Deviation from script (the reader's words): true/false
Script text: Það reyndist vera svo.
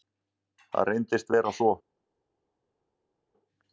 false